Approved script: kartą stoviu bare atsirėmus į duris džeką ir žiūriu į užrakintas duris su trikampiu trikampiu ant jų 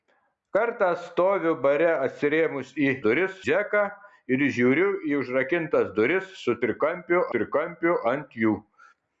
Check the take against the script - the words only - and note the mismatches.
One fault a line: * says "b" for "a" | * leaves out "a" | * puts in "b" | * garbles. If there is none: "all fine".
all fine